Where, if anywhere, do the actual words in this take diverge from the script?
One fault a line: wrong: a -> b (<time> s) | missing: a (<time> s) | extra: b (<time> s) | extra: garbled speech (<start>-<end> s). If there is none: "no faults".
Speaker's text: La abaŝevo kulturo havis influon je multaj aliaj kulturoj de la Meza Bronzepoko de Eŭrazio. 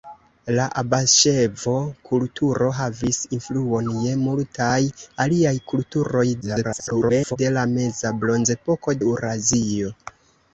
extra: garbled speech (6.4-7.4 s)
missing: de (9.0 s)